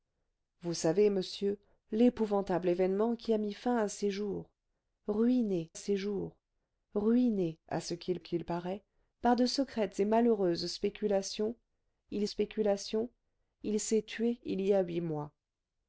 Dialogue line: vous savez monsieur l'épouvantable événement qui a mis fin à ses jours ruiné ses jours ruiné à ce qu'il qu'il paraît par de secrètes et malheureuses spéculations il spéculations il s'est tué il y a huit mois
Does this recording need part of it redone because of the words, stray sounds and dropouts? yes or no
no